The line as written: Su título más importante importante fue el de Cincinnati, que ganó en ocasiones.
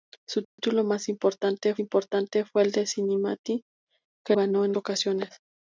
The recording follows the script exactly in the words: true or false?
true